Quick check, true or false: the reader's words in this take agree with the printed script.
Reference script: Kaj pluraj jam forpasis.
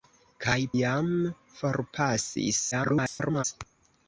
false